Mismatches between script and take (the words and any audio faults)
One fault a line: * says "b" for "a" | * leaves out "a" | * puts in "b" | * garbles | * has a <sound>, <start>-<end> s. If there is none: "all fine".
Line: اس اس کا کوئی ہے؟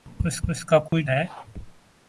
* has a dropout, 0.9-0.9 s